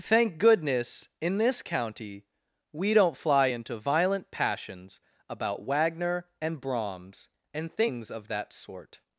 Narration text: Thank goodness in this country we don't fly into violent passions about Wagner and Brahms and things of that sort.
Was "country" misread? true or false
true